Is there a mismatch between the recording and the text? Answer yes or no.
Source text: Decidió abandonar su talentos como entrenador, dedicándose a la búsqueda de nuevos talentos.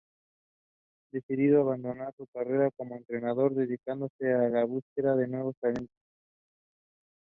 yes